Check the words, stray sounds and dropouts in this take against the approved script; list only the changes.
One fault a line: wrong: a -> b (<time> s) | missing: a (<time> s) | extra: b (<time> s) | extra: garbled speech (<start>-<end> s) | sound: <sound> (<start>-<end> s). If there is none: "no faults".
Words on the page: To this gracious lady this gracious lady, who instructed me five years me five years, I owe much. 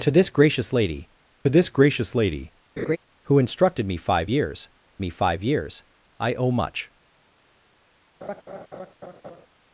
sound: laugh (2.8-3.0 s)
sound: laugh (8.2-9.5 s)